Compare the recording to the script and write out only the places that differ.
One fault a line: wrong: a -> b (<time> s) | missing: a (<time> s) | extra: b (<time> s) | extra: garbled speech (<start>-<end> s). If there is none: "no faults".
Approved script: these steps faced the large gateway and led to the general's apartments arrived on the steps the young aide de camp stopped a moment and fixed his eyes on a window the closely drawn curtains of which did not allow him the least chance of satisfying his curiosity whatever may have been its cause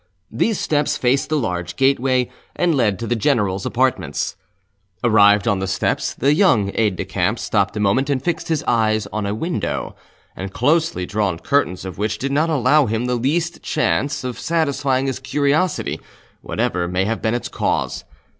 no faults